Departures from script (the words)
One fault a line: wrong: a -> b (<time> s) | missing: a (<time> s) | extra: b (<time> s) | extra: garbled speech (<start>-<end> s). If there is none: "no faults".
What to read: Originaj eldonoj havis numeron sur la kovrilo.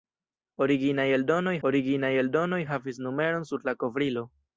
extra: originaj eldonoj (1.7 s)